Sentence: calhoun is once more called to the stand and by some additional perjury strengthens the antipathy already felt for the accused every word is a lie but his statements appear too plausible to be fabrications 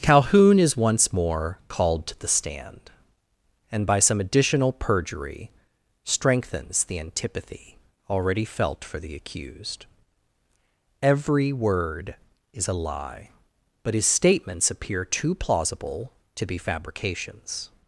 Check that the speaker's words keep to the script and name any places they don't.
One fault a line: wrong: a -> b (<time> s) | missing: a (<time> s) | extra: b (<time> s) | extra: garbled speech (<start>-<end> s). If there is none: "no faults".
no faults